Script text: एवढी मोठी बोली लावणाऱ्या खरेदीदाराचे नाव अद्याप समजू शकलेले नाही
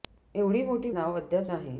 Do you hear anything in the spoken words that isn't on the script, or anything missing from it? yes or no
yes